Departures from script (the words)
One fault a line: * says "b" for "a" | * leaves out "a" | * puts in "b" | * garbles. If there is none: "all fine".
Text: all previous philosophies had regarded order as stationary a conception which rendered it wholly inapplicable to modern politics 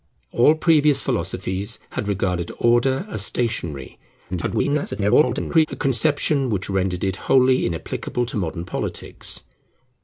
* garbles